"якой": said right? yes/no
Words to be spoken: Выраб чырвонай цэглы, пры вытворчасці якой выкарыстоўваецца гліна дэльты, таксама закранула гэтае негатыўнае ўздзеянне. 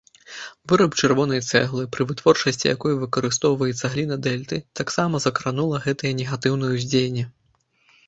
yes